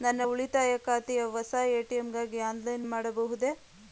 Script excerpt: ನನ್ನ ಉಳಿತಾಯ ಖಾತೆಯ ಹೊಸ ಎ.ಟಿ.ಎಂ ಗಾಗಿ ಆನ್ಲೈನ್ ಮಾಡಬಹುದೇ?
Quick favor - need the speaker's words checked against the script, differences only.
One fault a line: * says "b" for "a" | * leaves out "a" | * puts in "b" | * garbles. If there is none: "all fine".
all fine